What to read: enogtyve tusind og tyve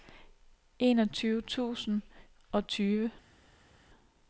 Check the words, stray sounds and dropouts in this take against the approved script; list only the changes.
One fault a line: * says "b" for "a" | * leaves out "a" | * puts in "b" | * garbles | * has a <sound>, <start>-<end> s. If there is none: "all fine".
all fine